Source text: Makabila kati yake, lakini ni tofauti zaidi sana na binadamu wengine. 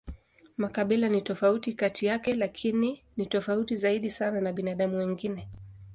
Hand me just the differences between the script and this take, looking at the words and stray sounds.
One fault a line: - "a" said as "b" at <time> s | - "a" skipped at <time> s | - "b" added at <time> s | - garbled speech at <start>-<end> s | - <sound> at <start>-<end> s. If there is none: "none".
- "ni tofauti" added at 1.1 s